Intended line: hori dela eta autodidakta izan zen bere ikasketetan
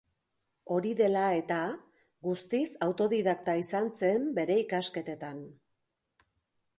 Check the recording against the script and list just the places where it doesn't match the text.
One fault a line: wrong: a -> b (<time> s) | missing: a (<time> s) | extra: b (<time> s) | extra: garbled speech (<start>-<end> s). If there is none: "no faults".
extra: guztiz (2.3 s)